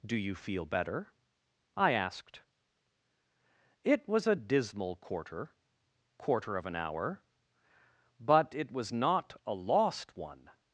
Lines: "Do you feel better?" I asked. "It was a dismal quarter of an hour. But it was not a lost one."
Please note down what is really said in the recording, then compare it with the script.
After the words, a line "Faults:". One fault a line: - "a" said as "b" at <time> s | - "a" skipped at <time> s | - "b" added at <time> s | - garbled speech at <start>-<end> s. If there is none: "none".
"Do you feel better?" I asked. "It was a dismal quarter quarter of an hour. But it was not a lost one."
Faults:
- "quarter" added at 6.2 s